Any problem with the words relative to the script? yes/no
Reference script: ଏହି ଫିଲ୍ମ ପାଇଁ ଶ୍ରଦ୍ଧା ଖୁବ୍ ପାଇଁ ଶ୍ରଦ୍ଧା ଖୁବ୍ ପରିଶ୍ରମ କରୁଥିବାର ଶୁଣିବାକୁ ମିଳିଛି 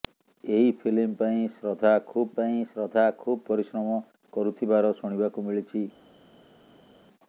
no